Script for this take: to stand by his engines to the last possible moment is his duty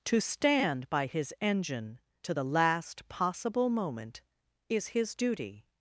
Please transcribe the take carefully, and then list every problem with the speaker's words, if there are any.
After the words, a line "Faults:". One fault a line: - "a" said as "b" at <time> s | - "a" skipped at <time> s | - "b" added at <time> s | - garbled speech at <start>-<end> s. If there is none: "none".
to stand by his engine to the last possible moment is his duty
Faults:
- "engines" said as "engine" at 1.4 s